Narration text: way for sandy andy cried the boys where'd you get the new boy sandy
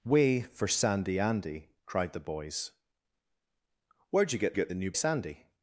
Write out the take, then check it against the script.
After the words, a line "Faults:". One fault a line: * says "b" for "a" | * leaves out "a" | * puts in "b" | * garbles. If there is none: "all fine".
way for sandy andy cried the boys where'd you get get the new sandy
Faults:
* puts in "get"
* leaves out "boy"